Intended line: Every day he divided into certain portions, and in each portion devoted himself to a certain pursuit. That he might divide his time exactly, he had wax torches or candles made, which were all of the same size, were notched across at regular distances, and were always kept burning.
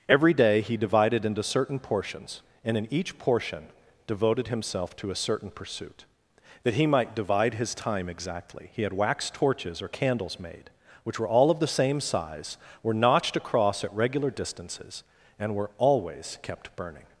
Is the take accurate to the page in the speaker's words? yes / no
yes